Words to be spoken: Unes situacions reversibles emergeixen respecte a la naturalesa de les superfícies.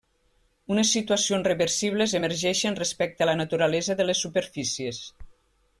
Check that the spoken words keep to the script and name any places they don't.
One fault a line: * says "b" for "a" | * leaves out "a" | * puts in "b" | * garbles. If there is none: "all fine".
all fine